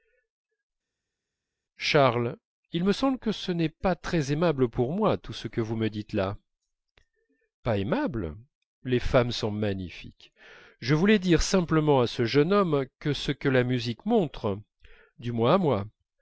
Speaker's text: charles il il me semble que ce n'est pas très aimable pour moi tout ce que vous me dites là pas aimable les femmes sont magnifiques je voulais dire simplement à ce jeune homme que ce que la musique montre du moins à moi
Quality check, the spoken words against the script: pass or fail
fail